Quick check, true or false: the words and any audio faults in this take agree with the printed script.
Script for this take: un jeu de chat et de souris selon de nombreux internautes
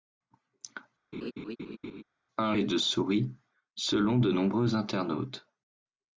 false